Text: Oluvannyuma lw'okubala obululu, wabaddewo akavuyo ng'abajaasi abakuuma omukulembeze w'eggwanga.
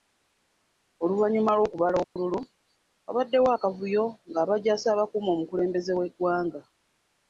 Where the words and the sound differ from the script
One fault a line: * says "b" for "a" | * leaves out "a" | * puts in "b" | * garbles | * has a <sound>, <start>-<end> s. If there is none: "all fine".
* has a dropout, 2.0-2.2 s